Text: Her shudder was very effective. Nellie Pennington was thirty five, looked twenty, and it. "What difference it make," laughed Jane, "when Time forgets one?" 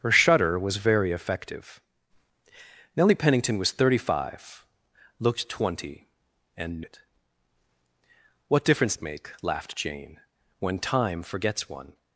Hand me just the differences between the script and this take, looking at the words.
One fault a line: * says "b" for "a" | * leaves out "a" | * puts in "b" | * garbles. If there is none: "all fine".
all fine